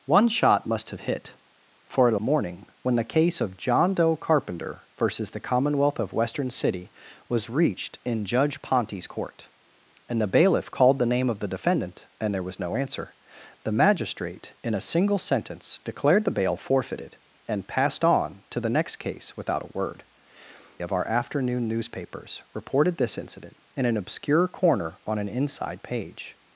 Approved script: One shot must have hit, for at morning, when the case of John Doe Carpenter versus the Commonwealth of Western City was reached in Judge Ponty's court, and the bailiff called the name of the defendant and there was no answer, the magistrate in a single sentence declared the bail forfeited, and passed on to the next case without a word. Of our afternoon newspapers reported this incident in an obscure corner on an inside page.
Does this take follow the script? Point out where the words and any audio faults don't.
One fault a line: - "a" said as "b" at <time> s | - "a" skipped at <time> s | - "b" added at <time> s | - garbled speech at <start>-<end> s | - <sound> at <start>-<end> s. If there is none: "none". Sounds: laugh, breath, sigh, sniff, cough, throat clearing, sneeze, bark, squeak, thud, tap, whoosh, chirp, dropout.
none